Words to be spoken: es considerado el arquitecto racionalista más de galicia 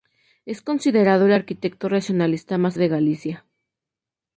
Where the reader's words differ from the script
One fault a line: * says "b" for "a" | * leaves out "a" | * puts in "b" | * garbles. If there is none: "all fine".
all fine